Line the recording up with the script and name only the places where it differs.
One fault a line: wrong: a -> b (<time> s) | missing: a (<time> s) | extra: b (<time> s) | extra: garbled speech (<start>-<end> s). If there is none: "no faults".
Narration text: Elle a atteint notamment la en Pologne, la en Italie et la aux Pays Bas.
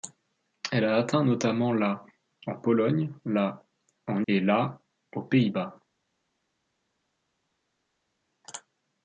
missing: Italie (4.2 s)